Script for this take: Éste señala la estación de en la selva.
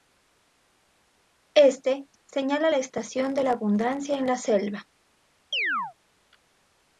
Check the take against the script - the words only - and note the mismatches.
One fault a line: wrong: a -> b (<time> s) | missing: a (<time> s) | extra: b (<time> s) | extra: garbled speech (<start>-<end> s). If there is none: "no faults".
extra: la abundancia (3.4 s)